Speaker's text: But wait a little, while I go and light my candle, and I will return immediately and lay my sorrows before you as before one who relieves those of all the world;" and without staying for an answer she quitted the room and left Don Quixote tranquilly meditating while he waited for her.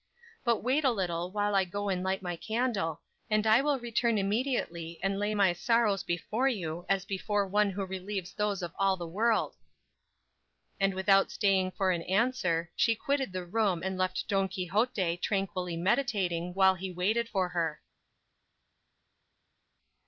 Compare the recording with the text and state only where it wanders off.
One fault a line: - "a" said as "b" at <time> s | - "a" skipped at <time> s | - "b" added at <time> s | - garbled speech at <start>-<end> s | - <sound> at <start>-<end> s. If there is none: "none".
none